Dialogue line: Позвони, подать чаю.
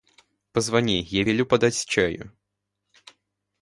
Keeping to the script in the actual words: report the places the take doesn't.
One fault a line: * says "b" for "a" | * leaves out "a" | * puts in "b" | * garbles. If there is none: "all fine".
* puts in "я велю"